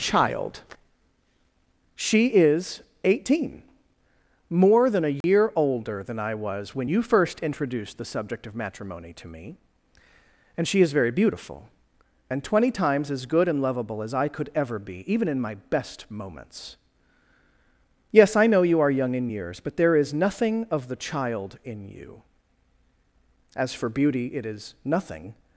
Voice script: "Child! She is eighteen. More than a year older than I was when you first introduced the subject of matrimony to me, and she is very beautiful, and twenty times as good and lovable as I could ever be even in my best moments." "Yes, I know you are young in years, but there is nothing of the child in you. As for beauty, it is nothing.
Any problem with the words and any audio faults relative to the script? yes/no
yes